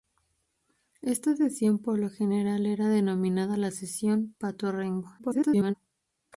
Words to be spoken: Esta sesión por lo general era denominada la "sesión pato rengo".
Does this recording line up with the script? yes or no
no